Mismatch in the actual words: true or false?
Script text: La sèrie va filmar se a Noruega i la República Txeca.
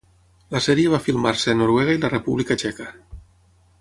false